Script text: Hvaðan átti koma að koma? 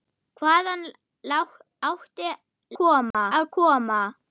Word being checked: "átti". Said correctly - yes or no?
yes